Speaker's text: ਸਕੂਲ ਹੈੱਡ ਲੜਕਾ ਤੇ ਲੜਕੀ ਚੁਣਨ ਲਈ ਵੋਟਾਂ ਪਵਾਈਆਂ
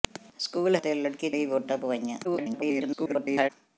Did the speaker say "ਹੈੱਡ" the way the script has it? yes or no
no